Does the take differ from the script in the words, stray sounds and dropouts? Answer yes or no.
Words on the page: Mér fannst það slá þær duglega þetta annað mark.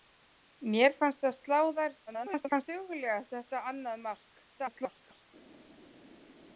yes